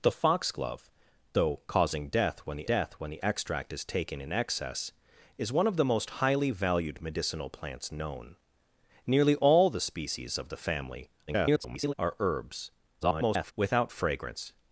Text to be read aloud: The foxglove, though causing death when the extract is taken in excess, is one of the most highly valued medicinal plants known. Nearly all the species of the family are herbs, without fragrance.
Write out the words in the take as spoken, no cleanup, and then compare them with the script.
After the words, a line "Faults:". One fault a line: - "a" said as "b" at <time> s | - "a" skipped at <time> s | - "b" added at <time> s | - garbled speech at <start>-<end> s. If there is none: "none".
The foxglove, though causing death when the death when the extract is taken in excess, is one of the most highly valued medicinal plants known. Nearly all the species of the family [garbled] are herbs, [garbled] without fragrance.
Faults:
- "death when the" added at 2.6 s
- garbled speech at 11.3-11.9 s
- garbled speech at 13.0-13.5 s